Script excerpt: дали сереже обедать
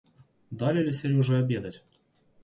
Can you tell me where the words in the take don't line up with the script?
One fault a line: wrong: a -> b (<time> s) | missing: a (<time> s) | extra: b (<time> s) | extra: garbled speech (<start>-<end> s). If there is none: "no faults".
extra: ли (0.8 s)